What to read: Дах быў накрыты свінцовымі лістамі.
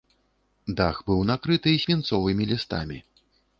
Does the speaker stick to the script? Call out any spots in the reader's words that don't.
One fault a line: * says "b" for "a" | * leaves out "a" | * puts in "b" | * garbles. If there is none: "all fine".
all fine